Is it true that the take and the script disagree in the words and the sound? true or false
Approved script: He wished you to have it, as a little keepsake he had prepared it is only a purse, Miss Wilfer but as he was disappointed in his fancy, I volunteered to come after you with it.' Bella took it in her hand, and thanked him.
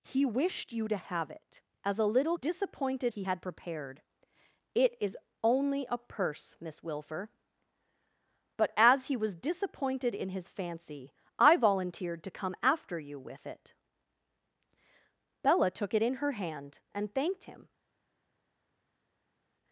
true